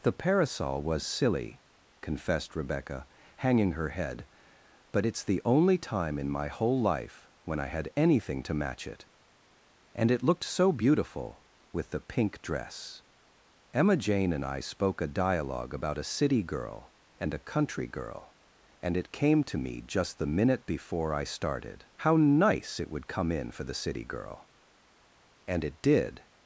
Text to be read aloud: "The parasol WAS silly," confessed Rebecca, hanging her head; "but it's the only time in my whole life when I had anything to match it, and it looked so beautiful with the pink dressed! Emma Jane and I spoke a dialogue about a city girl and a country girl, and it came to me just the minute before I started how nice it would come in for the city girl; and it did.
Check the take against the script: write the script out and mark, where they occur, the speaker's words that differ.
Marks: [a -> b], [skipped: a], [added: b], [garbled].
"The parasol WAS silly," confessed Rebecca, hanging her head; "but it's the only time in my whole life when I had anything to match it, and it looked so beautiful with the pink [dressed! -> dress] Emma Jane and I spoke a dialogue about a city girl and a country girl, and it came to me just the minute before I started how nice it would come in for the city girl; and it did.